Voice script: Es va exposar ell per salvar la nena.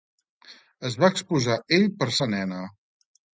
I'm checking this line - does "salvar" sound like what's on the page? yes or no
no